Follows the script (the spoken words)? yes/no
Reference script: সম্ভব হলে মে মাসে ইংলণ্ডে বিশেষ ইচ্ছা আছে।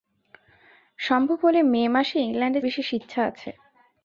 yes